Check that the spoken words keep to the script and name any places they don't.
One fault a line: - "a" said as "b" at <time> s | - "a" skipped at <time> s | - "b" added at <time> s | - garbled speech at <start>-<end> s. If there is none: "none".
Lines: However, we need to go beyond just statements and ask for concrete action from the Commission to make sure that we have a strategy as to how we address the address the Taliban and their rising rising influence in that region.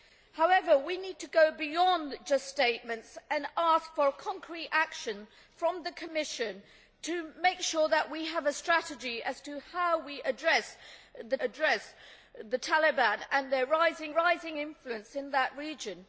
none